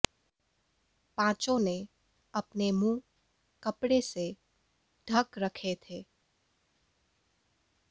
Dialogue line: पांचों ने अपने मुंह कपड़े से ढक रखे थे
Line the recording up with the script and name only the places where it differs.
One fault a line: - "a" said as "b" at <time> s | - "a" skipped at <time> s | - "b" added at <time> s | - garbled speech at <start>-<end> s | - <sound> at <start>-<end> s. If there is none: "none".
none